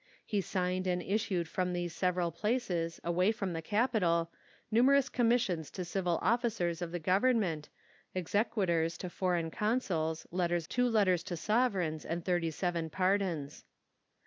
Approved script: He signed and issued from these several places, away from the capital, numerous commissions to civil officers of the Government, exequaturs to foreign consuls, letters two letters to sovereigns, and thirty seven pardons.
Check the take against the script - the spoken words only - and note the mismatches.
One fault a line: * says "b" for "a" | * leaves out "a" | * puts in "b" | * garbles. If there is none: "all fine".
all fine